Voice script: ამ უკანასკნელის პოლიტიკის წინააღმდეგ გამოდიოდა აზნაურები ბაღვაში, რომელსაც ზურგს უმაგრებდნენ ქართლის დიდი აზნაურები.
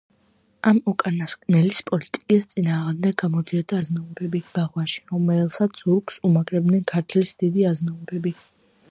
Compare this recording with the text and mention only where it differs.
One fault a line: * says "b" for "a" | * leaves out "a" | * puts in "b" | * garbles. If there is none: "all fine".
all fine